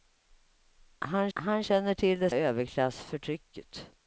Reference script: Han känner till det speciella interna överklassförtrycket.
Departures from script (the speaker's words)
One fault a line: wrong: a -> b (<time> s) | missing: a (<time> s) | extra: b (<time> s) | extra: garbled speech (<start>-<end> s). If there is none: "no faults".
extra: han (1.3 s)
missing: speciella interna (2.3 s)